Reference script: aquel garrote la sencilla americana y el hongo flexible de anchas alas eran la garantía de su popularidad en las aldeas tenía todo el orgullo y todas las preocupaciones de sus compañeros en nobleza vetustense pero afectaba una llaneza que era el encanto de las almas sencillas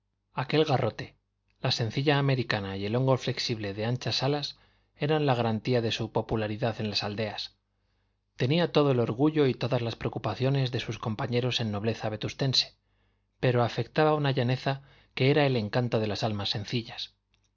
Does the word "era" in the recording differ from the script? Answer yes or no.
no